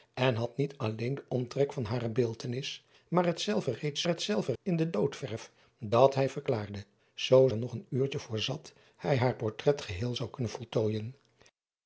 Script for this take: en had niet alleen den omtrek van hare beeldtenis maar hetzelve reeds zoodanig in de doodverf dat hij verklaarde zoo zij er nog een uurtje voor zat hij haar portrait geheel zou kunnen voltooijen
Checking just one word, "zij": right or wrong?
wrong